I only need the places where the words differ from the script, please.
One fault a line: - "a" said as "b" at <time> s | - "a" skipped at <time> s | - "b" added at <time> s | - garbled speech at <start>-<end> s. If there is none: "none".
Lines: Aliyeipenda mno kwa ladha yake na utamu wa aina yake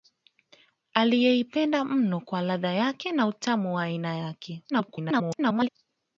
- garbled speech at 4.7-5.7 s